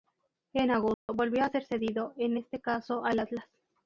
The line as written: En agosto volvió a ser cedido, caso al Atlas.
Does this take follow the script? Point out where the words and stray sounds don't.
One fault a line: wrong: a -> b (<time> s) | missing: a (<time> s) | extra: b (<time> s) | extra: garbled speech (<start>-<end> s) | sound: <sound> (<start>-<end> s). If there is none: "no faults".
sound: dropout (0.9-1.1 s)
extra: en este (2.2 s)